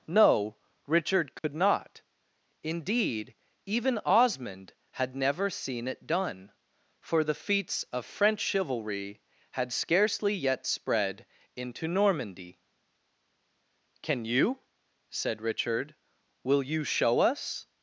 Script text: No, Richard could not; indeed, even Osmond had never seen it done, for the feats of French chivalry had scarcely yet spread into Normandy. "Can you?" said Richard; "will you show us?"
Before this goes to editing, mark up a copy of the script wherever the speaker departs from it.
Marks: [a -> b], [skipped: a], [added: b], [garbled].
No, Richard could not; indeed, even Osmond had never seen it done, for the feats of French chivalry had scarcely yet spread into Normandy. "Can you?" said Richard; "will you show us?"